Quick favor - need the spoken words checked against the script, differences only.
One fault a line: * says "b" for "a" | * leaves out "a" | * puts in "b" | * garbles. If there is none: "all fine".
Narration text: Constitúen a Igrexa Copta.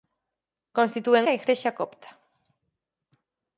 all fine